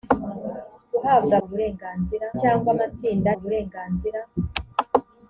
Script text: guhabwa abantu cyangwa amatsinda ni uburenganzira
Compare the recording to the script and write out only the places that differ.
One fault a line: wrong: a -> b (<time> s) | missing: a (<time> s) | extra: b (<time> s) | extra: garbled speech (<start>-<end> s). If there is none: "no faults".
wrong: abantu -> uburenganzira (1.4 s)
missing: ni (3.3 s)